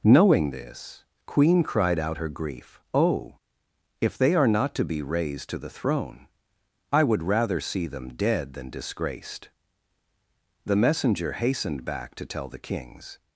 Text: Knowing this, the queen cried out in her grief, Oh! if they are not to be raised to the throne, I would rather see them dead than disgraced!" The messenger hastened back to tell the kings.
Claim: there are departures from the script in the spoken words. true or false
true